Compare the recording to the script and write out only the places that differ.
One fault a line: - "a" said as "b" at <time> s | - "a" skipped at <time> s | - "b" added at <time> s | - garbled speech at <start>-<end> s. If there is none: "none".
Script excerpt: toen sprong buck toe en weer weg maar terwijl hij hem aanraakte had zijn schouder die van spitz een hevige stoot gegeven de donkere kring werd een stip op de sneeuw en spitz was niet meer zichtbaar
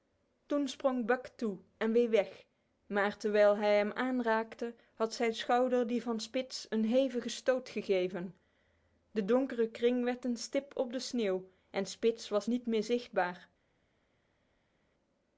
none